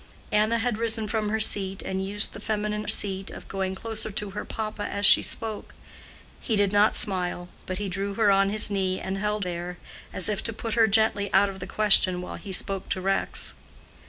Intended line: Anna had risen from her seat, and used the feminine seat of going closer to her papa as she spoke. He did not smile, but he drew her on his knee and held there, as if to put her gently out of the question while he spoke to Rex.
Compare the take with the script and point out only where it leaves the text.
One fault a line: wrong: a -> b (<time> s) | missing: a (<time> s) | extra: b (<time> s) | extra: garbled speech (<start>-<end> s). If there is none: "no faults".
no faults